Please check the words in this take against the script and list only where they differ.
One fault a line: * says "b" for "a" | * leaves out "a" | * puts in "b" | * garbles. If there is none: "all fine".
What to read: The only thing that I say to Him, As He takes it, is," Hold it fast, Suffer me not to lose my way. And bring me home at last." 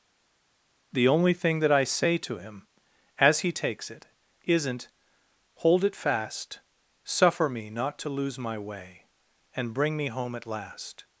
* says "isn't" for "is"